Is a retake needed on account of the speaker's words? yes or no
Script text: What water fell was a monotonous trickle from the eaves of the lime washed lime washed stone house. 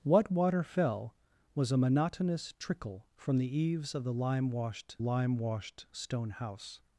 no